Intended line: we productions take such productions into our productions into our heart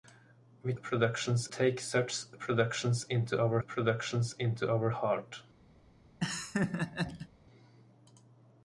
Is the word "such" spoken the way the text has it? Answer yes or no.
yes